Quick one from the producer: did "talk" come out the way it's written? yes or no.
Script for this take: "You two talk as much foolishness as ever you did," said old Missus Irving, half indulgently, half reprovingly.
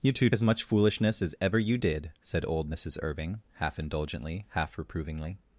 no